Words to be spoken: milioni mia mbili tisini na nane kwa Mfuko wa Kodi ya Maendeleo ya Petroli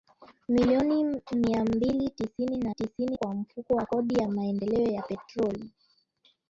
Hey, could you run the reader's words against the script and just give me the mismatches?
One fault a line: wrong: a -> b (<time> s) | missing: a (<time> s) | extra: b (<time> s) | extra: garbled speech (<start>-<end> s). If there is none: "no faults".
wrong: nane -> tisini (2.7 s)